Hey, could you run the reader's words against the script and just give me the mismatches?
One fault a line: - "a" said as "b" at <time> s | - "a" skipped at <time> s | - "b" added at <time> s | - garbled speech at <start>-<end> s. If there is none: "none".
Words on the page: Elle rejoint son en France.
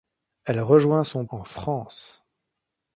none